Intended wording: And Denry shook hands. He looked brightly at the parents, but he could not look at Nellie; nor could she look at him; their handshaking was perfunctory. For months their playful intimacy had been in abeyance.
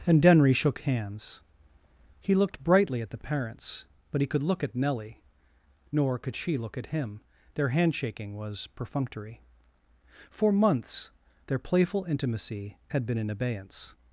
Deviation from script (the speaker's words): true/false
true